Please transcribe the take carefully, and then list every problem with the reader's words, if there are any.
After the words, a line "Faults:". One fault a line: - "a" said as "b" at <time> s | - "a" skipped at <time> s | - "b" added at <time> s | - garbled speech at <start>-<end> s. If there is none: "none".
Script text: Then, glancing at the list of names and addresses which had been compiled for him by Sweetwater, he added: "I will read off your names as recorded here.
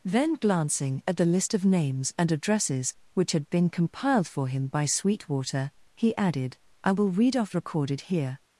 Then, glancing at the list of names and addresses which had been compiled for him by Sweetwater, he added: "I will read off recorded here.
Faults:
- "your names as" skipped at 7.5 s